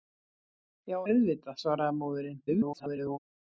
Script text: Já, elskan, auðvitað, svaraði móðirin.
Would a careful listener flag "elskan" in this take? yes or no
yes